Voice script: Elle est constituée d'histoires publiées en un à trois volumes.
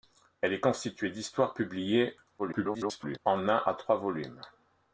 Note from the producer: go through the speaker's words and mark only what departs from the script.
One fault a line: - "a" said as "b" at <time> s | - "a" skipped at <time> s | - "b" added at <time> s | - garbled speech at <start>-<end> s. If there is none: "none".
- garbled speech at 2.4-3.2 s